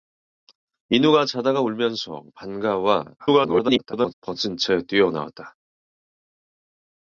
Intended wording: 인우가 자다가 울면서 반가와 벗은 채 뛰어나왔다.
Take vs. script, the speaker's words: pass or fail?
fail